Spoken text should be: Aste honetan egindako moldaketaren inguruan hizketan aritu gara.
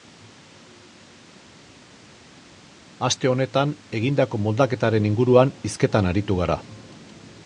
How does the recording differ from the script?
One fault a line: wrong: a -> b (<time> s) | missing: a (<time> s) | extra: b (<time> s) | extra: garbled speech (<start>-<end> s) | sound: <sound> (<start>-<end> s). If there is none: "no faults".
no faults